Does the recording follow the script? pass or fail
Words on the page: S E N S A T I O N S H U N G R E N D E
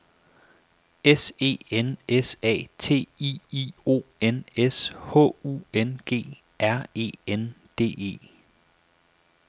fail